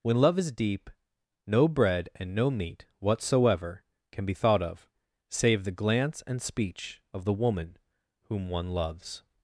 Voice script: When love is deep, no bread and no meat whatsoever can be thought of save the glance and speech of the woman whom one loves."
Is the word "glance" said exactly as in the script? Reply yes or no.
yes